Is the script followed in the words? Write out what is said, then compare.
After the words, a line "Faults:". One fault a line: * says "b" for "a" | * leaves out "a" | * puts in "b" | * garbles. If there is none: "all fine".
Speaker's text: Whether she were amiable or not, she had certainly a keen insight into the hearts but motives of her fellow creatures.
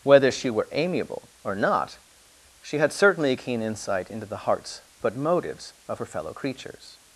Whether she were amiable or not, she had certainly a keen insight into the hearts but motives of her fellow creatures.
Faults:
all fine